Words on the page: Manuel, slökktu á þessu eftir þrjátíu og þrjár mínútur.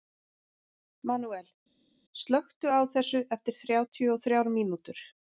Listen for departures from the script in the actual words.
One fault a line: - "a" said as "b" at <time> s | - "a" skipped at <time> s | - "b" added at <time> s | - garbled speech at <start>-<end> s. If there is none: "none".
none